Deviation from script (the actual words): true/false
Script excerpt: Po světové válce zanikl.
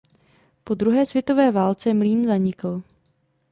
true